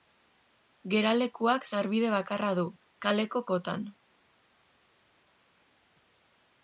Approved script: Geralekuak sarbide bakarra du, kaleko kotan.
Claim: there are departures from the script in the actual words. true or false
false